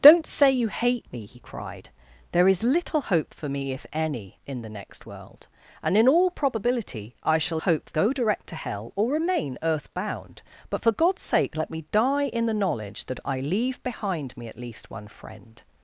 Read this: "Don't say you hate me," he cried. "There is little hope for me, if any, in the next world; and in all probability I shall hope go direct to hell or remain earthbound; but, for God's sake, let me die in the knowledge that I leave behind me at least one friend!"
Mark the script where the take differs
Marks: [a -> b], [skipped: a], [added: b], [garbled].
"Don't say you hate me," he cried. "There is little hope for me, if any, in the next world; and in all probability I shall hope go direct to hell or remain earthbound; but, for God's sake, let me die in the knowledge that I leave behind me at least one friend!"